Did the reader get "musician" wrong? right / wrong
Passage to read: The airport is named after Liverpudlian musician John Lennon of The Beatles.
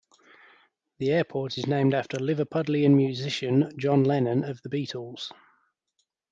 right